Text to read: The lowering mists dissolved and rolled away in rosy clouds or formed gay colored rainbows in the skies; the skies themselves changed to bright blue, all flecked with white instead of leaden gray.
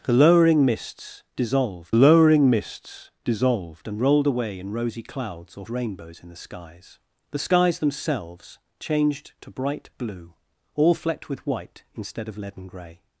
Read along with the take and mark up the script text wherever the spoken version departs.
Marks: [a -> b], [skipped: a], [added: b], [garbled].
The lowering mists dissolved [added: lowering mists dissolved] and rolled away in rosy clouds or [skipped: formed gay colored] rainbows in the skies; the skies themselves changed to bright blue, all flecked with white instead of leaden gray.